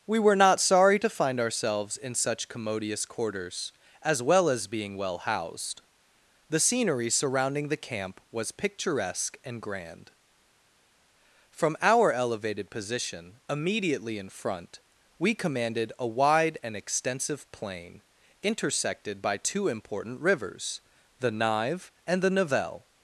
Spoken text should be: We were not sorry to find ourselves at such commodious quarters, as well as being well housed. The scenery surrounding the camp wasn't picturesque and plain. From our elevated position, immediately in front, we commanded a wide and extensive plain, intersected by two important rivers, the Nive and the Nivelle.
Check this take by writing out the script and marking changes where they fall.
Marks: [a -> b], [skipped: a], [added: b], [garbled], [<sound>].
We were not sorry to find ourselves [at -> in] such commodious quarters, as well as being well housed. The scenery surrounding the camp [wasn't -> was] picturesque and [plain. -> grand] From our elevated position, immediately in front, we commanded a wide and extensive plain, intersected by two important rivers, the Nive and the Nivelle.